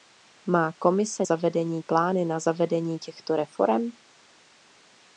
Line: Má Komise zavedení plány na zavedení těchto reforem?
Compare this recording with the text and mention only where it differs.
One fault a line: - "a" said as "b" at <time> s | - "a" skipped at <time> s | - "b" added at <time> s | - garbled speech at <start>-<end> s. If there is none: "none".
none